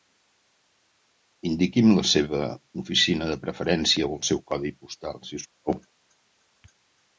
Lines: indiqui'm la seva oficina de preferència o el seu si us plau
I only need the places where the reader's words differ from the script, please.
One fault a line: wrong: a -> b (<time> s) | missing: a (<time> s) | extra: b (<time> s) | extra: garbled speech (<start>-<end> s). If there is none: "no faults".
extra: codi postal (4.5 s)